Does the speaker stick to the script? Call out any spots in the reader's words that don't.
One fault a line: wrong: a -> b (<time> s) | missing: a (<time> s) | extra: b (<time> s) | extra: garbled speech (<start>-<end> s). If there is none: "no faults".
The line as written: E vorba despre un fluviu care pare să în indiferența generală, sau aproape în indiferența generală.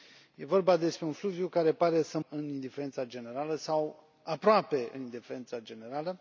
no faults